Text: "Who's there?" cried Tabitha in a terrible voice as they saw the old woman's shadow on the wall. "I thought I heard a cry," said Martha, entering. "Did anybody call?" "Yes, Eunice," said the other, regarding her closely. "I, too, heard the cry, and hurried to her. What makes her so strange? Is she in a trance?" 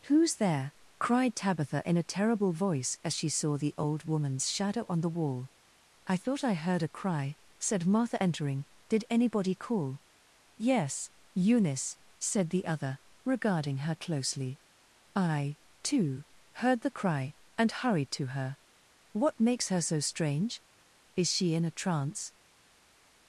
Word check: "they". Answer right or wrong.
wrong